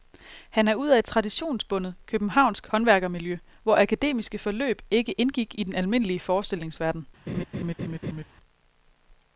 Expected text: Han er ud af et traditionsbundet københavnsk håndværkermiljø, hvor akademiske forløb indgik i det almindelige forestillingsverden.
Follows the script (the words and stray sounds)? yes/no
no